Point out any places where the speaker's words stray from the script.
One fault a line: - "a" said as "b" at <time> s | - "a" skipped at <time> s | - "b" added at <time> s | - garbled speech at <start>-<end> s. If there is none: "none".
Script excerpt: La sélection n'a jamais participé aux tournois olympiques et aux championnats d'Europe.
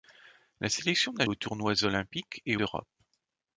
- "jamais participé" skipped at 1.3 s
- "aux championnats" skipped at 2.6 s